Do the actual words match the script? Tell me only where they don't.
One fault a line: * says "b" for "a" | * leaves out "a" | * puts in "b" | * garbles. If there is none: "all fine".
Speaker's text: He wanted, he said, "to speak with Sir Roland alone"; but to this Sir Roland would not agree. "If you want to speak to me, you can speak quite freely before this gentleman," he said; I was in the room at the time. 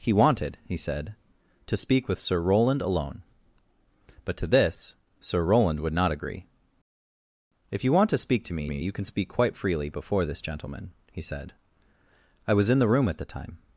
* puts in "me"